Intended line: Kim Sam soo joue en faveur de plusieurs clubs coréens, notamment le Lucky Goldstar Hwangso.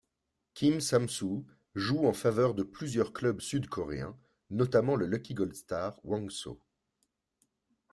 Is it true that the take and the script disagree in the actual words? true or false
true